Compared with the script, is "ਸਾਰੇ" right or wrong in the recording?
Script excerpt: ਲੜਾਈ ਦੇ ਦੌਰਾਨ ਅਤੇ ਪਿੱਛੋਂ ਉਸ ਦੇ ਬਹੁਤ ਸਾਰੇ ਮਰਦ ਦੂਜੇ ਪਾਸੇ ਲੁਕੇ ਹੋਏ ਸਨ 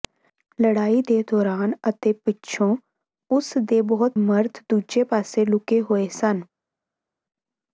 wrong